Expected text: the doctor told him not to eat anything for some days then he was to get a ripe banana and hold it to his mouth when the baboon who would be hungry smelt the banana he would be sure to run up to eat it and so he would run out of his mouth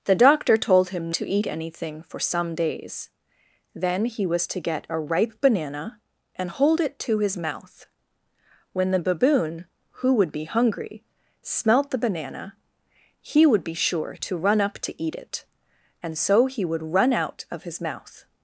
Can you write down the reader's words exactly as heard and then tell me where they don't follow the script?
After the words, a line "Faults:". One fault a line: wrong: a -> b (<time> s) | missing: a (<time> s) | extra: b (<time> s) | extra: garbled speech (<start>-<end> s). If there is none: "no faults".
the doctor told him to eat anything for some days then he was to get a ripe banana and hold it to his mouth when the baboon who would be hungry smelt the banana he would be sure to run up to eat it and so he would run out of his mouth
Faults:
missing: not (1.1 s)